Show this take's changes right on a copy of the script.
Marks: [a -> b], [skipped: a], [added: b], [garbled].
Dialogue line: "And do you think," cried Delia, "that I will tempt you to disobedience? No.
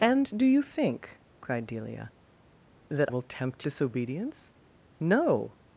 "And do you think," cried Delia, "that [skipped: I] will tempt [skipped: you to] disobedience? No.